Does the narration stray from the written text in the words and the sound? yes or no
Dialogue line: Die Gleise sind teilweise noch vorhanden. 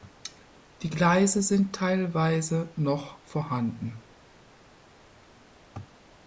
no